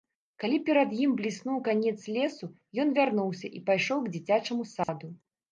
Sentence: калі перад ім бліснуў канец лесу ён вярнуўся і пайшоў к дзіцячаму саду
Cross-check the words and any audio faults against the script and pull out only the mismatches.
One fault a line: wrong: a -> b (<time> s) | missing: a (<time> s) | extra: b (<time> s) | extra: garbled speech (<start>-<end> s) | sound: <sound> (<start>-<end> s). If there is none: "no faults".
sound: dropout (4.8-4.9 s)